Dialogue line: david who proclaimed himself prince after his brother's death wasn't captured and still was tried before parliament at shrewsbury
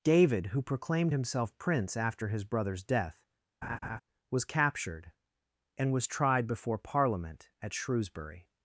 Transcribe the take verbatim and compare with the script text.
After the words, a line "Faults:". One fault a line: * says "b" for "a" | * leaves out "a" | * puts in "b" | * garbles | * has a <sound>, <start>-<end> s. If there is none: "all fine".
david who proclaimed himself prince after his brother's death was captured and was tried before parliament at shrewsbury
Faults:
* has a laugh, 3.6-4.0 s
* says "was" for "wasn't"
* leaves out "still"